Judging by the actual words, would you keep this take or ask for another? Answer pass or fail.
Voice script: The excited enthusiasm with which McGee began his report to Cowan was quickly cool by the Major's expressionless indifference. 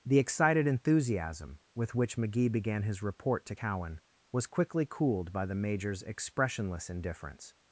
fail